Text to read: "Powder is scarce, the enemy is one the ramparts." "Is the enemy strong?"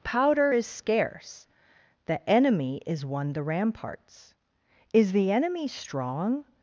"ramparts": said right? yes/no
yes